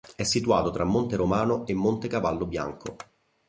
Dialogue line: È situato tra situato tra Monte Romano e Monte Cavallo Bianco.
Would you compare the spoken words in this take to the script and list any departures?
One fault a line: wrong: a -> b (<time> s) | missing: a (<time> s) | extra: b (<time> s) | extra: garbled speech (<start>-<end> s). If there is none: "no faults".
missing: situato tra (0.8 s)